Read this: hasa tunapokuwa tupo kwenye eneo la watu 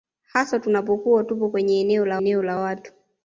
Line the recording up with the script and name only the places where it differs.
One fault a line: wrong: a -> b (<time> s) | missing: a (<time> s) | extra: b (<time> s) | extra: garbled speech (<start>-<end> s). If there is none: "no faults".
extra: eneo la (2.2 s)